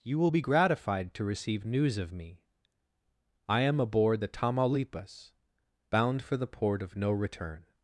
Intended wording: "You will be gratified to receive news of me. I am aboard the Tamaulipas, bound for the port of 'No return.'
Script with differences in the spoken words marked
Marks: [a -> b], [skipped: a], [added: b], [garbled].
"You will be gratified to receive news of me. I am aboard the Tamaulipas, bound for the port of 'No return.'